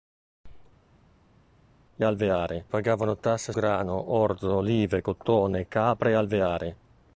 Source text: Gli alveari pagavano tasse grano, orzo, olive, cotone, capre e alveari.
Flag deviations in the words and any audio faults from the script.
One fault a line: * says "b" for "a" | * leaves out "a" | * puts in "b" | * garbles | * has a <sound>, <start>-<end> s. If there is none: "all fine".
all fine